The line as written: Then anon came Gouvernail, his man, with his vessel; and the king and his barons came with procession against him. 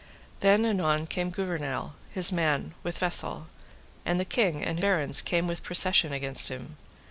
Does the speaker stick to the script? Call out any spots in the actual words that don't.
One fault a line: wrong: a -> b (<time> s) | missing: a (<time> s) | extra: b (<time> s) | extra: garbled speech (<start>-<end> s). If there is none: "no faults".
missing: his (3.0 s)
missing: his (4.8 s)